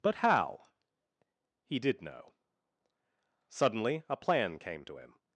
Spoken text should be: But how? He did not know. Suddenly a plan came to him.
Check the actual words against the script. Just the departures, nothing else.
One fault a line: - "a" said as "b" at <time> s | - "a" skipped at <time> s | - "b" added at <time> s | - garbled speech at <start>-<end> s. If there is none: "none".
- "not" skipped at 2.0 s